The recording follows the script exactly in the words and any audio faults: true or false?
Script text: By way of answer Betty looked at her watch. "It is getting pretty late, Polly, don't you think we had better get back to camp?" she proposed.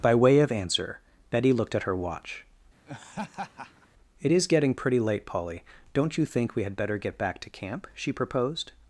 false